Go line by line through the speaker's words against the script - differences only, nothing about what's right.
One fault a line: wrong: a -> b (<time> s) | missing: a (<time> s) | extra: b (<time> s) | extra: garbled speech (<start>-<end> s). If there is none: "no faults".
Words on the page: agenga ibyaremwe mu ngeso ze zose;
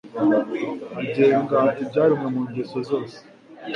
missing: ze (2.8 s)